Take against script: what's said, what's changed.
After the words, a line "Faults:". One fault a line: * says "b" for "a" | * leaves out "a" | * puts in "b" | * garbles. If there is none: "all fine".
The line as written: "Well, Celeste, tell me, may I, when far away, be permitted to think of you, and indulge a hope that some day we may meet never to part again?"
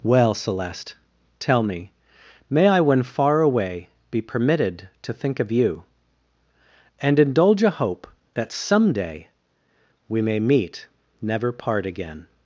"Well, Celeste, tell me, may I, when far away, be permitted to think of you, and indulge a hope that some day we may meet never part again?"
Faults:
* leaves out "to"